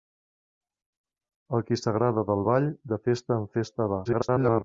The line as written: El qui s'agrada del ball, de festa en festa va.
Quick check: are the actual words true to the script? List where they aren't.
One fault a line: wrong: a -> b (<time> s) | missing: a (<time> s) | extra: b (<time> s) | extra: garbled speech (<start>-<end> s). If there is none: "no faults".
extra: garbled speech (4.0-4.6 s)